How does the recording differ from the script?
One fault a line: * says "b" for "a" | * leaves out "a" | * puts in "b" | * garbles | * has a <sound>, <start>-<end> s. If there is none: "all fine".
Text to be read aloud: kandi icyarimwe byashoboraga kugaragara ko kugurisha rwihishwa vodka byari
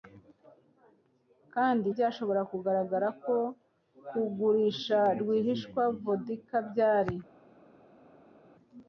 * leaves out "icyarimwe"